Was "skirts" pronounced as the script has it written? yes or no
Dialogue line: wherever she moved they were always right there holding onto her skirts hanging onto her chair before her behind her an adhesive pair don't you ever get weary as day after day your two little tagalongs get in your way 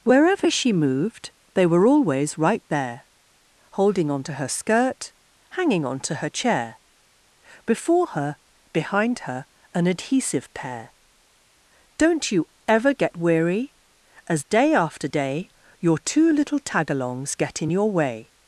no